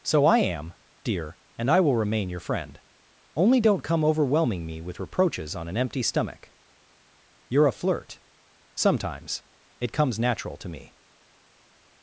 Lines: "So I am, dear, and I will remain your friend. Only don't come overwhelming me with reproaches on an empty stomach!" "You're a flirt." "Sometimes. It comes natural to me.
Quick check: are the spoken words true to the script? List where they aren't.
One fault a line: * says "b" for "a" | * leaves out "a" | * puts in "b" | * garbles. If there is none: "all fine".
all fine